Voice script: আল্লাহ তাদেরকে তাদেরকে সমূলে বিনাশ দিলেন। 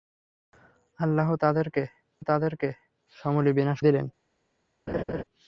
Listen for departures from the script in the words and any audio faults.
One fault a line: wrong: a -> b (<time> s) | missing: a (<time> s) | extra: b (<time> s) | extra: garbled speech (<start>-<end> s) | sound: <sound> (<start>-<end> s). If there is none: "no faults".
sound: laugh (4.9-5.2 s)